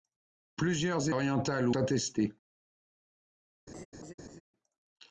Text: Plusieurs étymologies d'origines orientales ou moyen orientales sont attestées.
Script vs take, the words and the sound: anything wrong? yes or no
yes